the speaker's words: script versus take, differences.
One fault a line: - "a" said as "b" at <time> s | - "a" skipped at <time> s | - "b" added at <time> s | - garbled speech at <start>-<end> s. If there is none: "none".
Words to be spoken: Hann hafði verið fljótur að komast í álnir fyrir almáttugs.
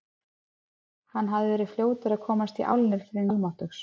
none